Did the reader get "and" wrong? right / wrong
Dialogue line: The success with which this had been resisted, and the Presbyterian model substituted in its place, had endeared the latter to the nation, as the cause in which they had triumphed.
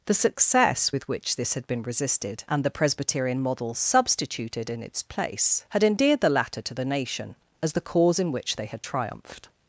right